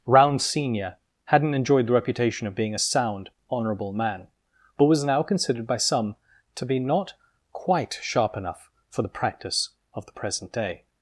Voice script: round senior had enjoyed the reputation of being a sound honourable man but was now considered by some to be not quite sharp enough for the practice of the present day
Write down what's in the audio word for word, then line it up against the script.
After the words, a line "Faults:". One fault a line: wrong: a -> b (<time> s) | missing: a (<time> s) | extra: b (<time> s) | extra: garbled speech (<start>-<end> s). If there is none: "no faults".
round senior hadn't enjoyed the reputation of being a sound honourable man but was now considered by some to be not quite sharp enough for the practice of the present day
Faults:
wrong: had -> hadn't (1.2 s)